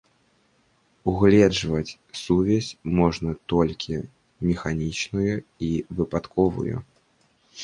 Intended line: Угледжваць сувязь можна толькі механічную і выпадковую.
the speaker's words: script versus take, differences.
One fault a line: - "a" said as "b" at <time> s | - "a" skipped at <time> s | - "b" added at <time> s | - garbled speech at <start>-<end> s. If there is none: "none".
none